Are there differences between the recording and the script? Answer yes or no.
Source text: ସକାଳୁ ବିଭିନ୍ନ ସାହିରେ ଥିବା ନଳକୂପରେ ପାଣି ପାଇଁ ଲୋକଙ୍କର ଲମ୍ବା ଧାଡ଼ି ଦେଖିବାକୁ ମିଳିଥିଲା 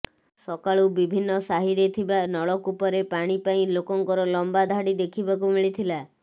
no